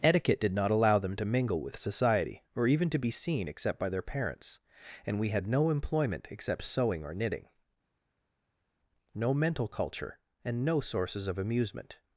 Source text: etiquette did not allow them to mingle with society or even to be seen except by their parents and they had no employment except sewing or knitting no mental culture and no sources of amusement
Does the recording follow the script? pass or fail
fail